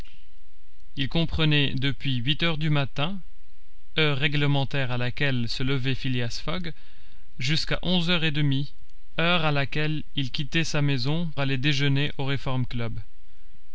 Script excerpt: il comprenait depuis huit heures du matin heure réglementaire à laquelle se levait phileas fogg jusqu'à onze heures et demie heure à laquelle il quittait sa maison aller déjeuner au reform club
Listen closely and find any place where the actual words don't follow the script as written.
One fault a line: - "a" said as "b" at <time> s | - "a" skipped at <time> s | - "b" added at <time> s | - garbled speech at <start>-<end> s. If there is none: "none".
none